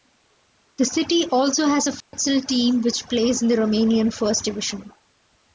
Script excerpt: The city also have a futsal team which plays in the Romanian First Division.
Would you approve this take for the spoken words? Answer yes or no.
no